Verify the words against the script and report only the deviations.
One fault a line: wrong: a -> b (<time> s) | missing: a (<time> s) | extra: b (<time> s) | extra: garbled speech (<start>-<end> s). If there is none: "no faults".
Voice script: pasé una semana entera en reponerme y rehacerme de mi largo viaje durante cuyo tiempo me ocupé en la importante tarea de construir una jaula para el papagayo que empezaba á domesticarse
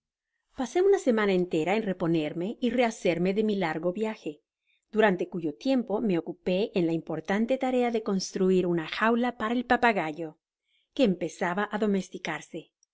no faults